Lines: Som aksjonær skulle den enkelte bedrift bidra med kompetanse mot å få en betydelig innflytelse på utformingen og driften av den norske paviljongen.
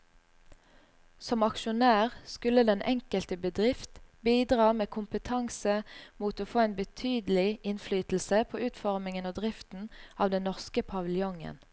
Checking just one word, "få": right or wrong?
right